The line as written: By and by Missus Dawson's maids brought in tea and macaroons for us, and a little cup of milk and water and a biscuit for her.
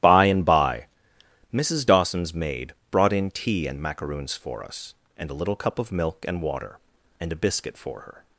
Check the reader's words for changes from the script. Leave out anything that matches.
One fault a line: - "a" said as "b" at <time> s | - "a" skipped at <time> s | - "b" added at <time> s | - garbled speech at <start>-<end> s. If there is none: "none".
- "maids" said as "maid" at 2.3 s